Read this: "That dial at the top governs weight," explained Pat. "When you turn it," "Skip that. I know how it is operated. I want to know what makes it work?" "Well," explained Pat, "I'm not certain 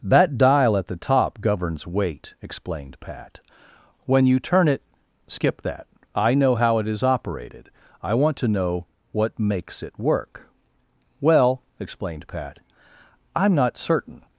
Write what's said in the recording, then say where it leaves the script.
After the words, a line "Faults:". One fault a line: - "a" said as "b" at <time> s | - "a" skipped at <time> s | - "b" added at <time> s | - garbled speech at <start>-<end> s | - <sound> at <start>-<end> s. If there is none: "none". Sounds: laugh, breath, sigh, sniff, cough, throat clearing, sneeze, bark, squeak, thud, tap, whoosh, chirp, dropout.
"That dial at the top governs weight," explained Pat. "When you turn it," "Skip that. I know how it is operated. I want to know what makes it work?" "Well," explained Pat, "I'm not certain
Faults:
none